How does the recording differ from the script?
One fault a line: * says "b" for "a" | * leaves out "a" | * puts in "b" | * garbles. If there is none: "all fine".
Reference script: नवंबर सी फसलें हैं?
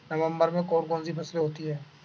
* puts in "में कौन कौन"
* puts in "होती"